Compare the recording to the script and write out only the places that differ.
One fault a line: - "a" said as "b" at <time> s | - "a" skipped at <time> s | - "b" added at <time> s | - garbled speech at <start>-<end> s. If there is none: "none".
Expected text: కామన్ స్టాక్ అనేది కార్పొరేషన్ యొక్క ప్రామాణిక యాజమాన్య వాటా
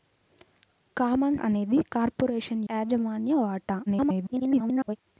- "స్టాక్" skipped at 1.4 s
- "యొక్క ప్రామాణిక" skipped at 2.6 s
- garbled speech at 3.9-5.0 s